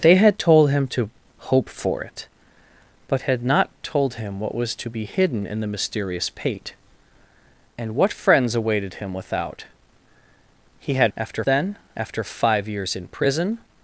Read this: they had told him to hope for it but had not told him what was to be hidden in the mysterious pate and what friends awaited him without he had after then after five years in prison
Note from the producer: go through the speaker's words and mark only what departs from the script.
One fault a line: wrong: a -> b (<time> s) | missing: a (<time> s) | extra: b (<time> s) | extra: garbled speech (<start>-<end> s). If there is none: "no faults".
no faults